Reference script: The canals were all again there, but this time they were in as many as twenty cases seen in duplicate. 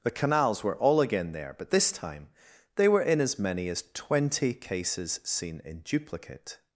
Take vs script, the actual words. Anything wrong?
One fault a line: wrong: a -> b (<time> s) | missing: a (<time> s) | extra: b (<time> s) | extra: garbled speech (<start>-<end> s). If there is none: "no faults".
no faults